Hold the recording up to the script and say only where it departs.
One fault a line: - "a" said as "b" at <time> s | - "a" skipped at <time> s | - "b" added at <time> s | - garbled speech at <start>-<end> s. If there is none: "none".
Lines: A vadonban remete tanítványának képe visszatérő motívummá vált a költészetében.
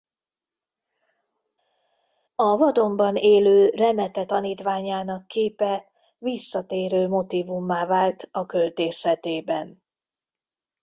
- "élő" added at 3.1 s